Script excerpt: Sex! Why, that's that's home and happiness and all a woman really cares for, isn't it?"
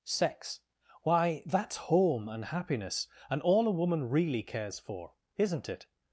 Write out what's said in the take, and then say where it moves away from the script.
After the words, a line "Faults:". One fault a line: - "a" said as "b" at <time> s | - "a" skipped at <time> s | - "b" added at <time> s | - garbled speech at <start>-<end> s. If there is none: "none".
Sex! Why, that's home and happiness and all a woman really cares for, isn't it?"
Faults:
- "that's" skipped at 1.8 s